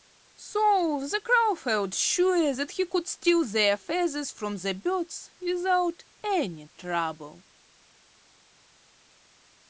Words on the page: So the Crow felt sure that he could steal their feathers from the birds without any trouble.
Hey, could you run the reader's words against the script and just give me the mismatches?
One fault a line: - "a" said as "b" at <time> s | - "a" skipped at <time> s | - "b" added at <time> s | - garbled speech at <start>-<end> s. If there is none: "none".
none